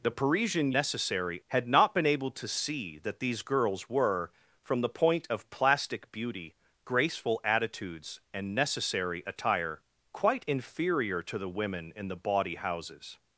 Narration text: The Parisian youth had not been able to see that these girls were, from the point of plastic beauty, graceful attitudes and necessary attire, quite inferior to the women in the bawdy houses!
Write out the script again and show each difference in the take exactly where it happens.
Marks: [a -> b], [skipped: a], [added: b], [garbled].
The Parisian [youth -> necessary] had not been able to see that these girls were, from the point of plastic beauty, graceful attitudes and necessary attire, quite inferior to the women in the bawdy houses!